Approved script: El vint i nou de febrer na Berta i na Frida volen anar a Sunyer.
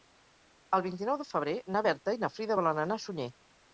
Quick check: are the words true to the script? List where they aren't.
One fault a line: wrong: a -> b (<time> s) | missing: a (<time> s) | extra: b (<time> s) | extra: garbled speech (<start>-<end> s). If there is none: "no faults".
no faults